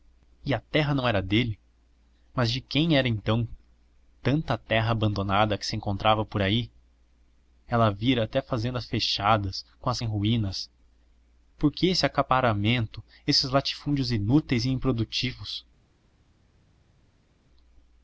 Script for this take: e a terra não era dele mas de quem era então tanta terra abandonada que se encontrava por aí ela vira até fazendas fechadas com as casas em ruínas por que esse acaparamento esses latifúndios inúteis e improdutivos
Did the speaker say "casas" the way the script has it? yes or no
no